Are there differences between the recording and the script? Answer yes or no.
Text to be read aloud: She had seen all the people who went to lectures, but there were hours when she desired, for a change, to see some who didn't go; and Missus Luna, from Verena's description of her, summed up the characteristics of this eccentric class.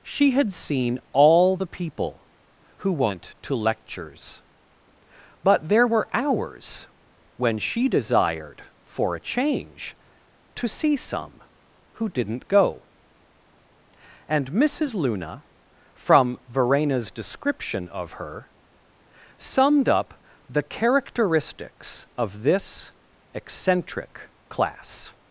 no